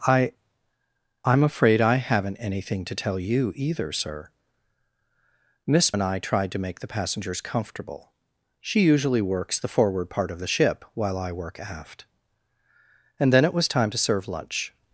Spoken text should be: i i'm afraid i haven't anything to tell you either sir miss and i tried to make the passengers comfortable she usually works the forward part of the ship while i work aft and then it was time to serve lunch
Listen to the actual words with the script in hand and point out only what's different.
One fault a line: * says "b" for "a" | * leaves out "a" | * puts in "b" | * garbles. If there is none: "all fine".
all fine